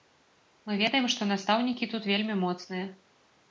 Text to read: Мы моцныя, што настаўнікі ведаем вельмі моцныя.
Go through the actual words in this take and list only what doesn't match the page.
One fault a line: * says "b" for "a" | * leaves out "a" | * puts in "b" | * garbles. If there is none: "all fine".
* says "ведаем" for "моцныя"
* says "тут" for "ведаем"